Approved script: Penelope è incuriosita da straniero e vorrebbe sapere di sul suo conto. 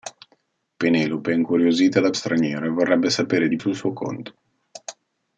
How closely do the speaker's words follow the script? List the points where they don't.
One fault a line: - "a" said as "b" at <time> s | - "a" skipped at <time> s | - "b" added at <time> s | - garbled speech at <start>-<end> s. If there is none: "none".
none